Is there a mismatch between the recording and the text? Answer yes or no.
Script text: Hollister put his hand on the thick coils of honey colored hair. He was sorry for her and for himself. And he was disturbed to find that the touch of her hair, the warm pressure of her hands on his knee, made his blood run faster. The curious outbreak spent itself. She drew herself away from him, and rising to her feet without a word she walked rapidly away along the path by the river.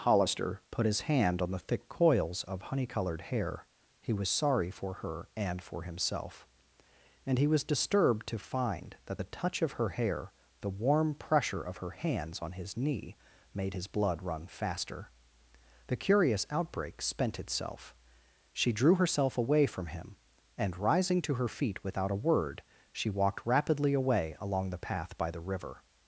no